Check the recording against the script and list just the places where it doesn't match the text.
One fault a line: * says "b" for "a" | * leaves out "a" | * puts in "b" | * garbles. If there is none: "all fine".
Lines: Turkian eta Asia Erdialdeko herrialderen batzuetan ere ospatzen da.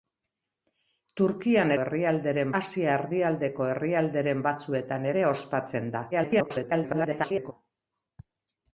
* says "herrialderen" for "eta"
* garbles